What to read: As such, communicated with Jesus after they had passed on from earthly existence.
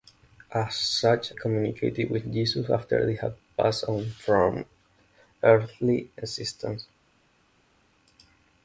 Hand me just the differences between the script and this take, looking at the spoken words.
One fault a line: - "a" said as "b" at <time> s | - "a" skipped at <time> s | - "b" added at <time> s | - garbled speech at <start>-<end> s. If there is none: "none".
none